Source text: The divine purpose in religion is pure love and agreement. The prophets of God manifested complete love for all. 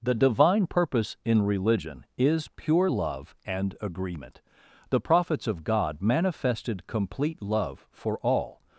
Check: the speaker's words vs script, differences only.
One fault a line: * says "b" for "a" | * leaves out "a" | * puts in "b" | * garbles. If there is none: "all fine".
all fine